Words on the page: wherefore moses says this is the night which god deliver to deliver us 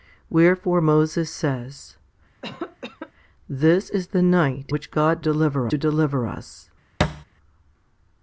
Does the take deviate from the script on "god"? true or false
false